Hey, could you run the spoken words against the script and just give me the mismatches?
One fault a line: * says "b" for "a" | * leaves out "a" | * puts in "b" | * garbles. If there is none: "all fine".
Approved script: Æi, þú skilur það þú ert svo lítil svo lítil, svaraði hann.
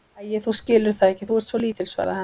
* puts in "ekki"
* leaves out "svo lítil"